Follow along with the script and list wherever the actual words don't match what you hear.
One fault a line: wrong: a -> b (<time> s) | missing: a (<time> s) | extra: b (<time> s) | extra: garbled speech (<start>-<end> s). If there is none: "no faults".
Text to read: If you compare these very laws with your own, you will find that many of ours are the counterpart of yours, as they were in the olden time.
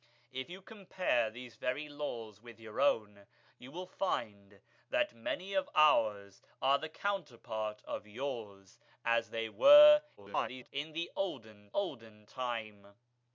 extra: garbled speech (10.2-10.7 s)
extra: olden (11.7 s)